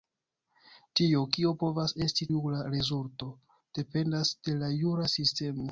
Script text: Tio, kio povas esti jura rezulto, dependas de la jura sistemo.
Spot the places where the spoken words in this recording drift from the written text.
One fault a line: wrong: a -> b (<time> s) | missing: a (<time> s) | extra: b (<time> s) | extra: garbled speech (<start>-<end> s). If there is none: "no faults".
no faults